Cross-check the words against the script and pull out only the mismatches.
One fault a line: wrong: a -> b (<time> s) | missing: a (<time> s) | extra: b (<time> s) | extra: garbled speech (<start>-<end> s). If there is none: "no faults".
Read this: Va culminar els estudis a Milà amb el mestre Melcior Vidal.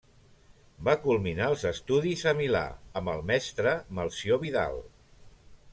no faults